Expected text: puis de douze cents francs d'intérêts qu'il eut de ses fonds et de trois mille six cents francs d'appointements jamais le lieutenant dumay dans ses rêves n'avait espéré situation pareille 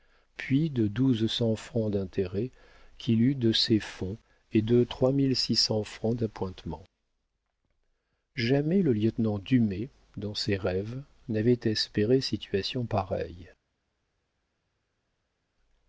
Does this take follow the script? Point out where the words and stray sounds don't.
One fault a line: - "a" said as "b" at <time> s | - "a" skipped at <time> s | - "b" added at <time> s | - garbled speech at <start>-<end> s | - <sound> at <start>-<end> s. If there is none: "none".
none